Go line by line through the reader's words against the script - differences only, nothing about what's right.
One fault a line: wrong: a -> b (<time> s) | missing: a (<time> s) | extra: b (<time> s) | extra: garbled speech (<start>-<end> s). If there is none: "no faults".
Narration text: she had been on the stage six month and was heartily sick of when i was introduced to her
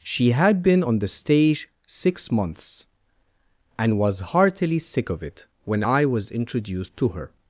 wrong: month -> months (2.3 s)
extra: it (5.2 s)